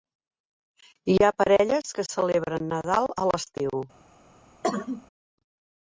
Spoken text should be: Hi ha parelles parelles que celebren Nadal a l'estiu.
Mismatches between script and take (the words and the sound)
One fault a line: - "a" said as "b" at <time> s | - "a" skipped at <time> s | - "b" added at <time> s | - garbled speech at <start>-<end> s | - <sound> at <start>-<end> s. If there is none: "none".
- "parelles" skipped at 1.9 s
- cough at 4.6-5.1 s